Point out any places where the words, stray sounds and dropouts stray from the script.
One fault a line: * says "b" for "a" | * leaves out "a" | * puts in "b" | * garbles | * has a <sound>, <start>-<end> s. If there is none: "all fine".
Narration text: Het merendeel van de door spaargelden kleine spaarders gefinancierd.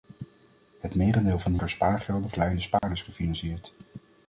* has a dropout, 2.8-2.8 s